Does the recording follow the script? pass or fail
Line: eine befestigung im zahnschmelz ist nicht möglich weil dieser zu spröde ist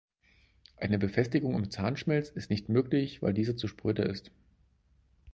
pass